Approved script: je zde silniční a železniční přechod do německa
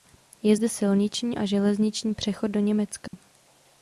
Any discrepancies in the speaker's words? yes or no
no